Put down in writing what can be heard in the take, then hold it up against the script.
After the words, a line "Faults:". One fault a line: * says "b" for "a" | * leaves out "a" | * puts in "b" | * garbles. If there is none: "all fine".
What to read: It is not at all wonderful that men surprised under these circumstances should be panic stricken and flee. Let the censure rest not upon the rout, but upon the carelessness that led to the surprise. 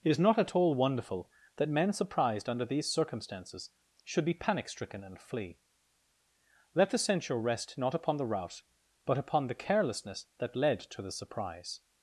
It is not at all wonderful that men surprised under these circumstances should be panic stricken and flee. Let the censure rest not upon the rout, but upon the carelessness that led to the surprise.
Faults:
all fine